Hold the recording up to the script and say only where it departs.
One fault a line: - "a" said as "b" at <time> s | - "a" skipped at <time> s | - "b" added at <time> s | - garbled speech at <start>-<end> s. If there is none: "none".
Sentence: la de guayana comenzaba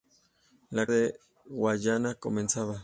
none